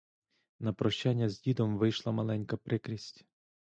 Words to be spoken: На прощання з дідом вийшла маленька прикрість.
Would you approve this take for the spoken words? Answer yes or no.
yes